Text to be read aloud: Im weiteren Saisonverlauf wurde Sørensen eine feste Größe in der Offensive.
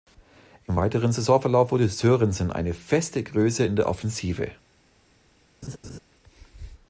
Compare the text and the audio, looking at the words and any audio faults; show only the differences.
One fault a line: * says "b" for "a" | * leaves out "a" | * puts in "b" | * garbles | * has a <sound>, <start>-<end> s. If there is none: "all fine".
* has a laugh, 5.6-6.0 s